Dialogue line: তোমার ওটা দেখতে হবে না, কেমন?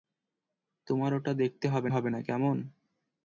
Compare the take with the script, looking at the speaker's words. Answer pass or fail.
fail